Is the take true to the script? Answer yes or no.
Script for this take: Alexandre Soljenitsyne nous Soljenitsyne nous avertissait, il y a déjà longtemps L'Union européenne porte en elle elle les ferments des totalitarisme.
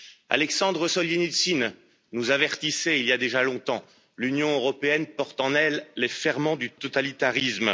no